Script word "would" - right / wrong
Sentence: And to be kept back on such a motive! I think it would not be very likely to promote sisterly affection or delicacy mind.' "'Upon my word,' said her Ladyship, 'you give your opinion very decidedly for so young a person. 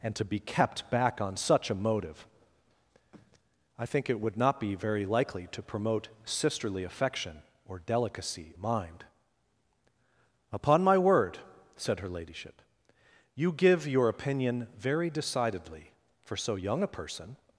right